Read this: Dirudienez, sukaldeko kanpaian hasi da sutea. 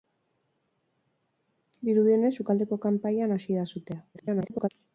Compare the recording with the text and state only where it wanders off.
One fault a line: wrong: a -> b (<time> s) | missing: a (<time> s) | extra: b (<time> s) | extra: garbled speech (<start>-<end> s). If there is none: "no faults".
extra: garbled speech (4.1-4.7 s)